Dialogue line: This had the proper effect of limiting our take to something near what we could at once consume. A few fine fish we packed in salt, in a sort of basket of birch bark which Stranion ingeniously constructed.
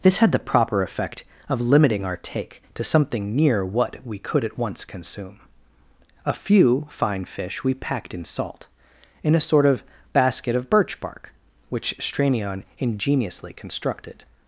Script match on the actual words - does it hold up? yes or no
yes